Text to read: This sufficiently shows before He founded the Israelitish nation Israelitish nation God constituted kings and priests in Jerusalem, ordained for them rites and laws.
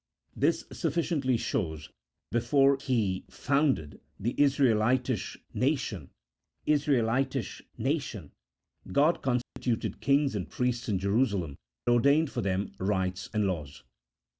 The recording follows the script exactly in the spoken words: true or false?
true